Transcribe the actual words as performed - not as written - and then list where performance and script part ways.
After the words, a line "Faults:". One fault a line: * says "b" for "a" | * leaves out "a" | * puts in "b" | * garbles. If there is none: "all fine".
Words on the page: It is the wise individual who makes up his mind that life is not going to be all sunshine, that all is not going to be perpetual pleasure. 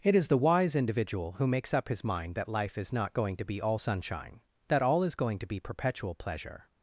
It is the wise individual who makes up his mind that life is not going to be all sunshine, that all is going to be perpetual pleasure.
Faults:
* leaves out "not"